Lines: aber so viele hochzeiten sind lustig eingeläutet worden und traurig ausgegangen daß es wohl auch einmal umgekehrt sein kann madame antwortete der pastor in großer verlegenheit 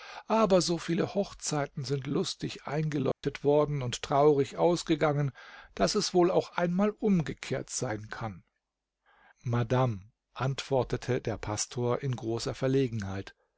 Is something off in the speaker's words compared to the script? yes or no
no